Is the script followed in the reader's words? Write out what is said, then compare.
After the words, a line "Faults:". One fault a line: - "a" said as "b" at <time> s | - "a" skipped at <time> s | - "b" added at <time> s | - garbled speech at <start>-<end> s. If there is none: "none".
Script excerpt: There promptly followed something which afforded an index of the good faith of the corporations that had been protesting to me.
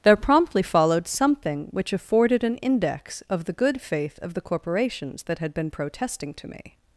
There promptly followed something which afforded an index of the good faith of the corporations that had been protesting to me.
Faults:
none